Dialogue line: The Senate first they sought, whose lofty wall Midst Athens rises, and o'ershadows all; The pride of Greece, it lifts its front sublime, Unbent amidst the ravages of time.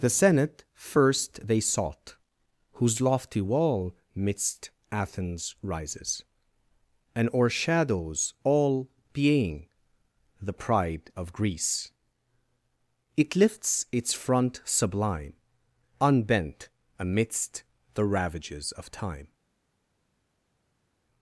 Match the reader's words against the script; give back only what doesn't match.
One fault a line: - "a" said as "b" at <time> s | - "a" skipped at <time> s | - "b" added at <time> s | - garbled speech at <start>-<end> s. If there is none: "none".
- "being" added at 9.1 s